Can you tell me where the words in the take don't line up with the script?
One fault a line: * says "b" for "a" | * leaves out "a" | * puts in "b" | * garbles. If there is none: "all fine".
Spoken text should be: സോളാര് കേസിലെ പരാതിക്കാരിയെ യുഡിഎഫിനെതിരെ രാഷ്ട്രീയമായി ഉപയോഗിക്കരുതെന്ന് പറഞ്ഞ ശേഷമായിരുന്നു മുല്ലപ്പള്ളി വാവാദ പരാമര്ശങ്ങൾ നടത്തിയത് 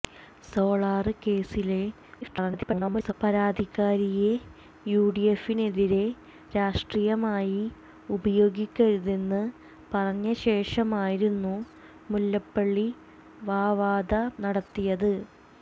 * garbles
* leaves out "പരാമര്ശങ്ങൾ"